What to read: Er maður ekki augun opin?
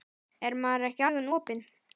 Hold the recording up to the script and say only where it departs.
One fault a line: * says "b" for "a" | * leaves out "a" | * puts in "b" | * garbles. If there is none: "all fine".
all fine